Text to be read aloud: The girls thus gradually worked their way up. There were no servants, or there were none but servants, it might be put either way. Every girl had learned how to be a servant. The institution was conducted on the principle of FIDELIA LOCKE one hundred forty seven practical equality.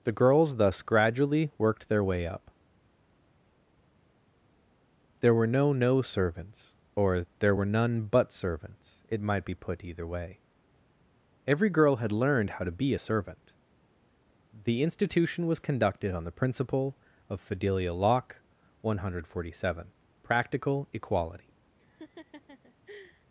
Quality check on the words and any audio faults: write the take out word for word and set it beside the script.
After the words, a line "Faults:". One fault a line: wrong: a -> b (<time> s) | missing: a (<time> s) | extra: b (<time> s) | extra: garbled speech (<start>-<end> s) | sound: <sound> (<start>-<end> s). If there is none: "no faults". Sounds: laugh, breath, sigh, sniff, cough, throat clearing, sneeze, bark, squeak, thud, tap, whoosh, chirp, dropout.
The girls thus gradually worked their way up. There were no no servants, or there were none but servants, it might be put either way. Every girl had learned how to be a servant. The institution was conducted on the principle of FIDELIA LOCKE one hundred forty seven practical equality.
Faults:
extra: no (5.7 s)
sound: laugh (21.8-23.3 s)